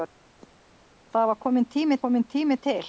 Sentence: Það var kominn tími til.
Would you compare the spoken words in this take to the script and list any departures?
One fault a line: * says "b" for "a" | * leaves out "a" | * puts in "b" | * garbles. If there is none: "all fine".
* puts in "kominn tími"